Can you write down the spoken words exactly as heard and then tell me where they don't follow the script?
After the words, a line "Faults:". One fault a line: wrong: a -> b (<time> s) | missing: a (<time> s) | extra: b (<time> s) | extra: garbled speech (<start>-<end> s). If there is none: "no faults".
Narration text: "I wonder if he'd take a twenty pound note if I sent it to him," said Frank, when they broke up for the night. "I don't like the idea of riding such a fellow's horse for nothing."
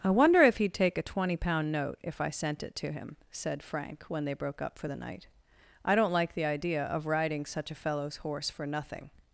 "I wonder if he'd take a twenty pound note if I sent it to him," said Frank, when they broke up for the night. "I don't like the idea of riding such a fellow's horse for nothing."
Faults:
no faults